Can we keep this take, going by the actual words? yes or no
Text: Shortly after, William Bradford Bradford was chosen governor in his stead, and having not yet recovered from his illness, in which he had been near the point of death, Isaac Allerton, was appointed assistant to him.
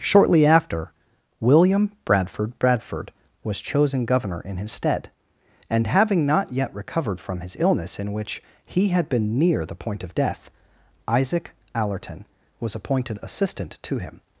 yes